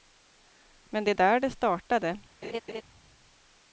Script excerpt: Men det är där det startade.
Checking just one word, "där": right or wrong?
right